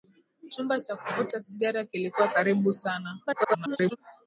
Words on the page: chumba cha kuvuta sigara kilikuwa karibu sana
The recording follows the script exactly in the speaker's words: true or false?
false